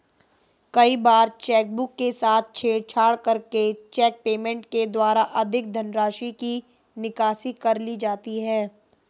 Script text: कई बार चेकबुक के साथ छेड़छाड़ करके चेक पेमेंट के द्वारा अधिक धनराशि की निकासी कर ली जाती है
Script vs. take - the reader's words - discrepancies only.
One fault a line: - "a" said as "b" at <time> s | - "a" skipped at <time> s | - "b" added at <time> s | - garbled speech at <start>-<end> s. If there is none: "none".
none